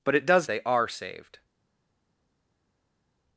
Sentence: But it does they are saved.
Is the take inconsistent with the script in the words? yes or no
no